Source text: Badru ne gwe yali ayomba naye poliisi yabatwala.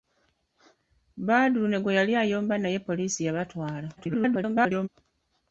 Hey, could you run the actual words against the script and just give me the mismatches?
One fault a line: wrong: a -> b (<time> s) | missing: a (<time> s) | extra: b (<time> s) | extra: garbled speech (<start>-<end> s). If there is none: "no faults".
extra: garbled speech (4.0-4.9 s)